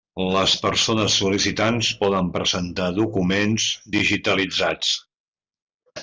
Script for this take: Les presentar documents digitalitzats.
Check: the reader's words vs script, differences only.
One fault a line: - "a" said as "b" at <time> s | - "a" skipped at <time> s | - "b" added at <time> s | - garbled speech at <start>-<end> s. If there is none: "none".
- "persones sol·licitants poden" added at 0.6 s